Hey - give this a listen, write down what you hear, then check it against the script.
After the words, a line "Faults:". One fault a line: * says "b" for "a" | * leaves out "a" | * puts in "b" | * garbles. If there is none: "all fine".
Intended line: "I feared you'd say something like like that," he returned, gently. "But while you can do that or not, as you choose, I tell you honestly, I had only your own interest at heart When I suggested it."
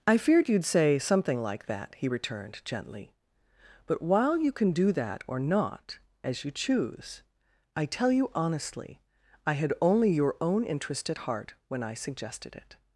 "I feared you'd say something like that," he returned, gently. "But while you can do that or not, as you choose, I tell you honestly, I had only your own interest at heart When I suggested it."
Faults:
* leaves out "like"